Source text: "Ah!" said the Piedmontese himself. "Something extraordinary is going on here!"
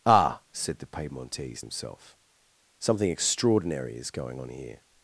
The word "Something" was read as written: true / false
true